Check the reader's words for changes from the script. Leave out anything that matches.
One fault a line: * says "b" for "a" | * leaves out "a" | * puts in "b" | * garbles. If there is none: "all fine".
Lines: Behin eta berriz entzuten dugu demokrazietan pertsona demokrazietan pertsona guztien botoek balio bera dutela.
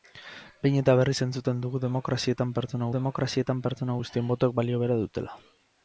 all fine